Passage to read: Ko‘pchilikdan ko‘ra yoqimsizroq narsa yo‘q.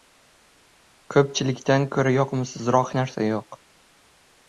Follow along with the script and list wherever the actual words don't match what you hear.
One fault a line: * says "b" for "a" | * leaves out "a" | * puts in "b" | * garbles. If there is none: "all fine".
all fine